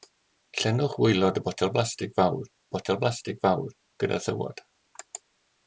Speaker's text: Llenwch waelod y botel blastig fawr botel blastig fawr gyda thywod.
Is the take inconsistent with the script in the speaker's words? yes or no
no